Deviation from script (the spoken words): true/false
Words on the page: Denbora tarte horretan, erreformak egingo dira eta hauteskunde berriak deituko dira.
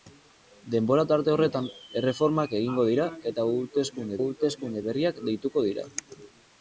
true